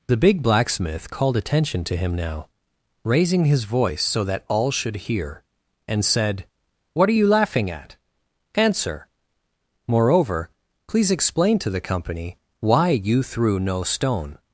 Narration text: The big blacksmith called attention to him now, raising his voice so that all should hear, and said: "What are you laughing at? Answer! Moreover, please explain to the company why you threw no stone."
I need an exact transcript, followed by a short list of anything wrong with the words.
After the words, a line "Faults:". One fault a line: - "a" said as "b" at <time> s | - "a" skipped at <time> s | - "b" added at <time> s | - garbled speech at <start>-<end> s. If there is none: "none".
The big blacksmith called attention to him now, raising his voice so that all should hear, and said: "What are you laughing at? Answer! Moreover, please explain to the company why you threw no stone."
Faults:
none